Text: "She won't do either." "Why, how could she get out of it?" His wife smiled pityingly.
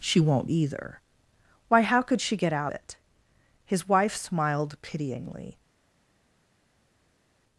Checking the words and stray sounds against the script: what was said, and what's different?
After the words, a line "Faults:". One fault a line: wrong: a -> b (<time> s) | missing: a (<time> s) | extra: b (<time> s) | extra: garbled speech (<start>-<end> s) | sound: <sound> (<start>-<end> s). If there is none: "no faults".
"She won't either." "Why, how could she get out it?" His wife smiled pityingly.
Faults:
missing: do (0.5 s)
missing: of (2.7 s)